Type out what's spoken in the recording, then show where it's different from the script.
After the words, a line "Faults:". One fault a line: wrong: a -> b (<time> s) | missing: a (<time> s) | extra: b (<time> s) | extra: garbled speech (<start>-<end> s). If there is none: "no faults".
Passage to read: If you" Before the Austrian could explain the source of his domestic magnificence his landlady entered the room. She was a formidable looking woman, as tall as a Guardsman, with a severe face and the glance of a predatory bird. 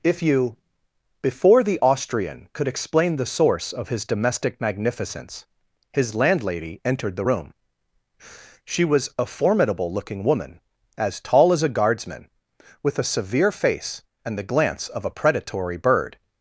If you" Before the Austrian could explain the source of his domestic magnificence his landlady entered the room. She was a formidable looking woman, as tall as a Guardsman, with a severe face and the glance of a predatory bird.
Faults:
no faults